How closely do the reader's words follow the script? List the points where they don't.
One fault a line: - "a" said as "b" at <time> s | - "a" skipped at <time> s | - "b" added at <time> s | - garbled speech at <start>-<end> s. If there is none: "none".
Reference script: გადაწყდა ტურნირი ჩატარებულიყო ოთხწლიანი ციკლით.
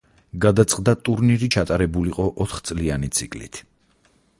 none